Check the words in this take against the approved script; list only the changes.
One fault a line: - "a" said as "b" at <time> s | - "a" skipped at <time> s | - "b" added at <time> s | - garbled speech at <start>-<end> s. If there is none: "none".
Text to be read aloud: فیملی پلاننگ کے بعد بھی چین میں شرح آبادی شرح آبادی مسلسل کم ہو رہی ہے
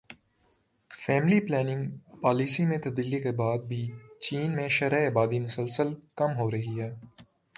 - "پالیسی میں تبدیلی" added at 2.2 s
- "شرح آبادی" skipped at 5.4 s